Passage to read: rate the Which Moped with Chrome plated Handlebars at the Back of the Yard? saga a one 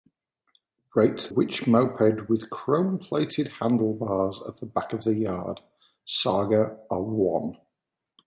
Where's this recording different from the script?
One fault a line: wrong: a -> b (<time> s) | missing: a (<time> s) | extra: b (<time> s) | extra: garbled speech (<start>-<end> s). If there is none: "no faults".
missing: the (1.3 s)